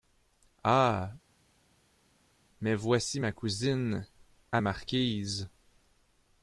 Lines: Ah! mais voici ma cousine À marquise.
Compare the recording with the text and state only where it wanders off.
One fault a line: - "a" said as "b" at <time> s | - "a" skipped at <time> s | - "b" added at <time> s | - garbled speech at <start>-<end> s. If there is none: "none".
none